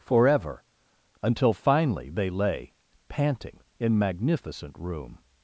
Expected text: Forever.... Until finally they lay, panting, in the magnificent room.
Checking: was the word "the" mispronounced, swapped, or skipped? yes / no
yes